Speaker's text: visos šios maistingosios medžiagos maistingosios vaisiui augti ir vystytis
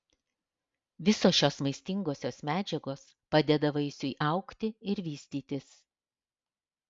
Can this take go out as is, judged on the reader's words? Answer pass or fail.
fail